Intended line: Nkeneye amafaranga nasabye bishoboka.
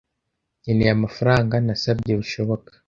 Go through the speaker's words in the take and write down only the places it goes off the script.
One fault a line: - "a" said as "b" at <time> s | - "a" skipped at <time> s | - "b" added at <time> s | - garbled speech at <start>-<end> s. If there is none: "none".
none